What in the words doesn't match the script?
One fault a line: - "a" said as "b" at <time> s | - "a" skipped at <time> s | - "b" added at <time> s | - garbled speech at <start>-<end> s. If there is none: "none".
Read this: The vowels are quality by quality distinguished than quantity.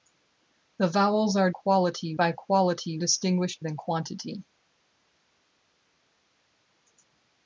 none